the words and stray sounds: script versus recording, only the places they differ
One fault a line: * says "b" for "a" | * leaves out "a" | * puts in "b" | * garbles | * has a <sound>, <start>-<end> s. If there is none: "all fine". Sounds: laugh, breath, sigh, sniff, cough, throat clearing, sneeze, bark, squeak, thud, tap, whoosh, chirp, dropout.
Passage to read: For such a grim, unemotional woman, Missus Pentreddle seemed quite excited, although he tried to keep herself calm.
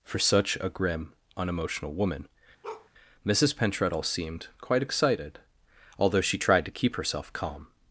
* has a bark, 2.6-2.9 s
* says "she" for "he"